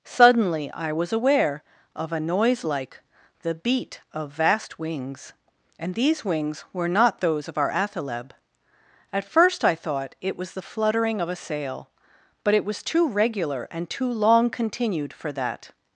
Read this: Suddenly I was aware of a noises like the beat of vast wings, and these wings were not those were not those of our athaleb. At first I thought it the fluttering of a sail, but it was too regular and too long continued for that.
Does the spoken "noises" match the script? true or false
false